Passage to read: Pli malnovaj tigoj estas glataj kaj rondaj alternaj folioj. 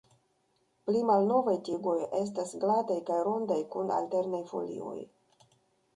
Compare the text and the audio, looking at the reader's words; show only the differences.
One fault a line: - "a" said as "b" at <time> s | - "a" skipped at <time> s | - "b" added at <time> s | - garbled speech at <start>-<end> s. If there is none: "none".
- "kun" added at 3.8 s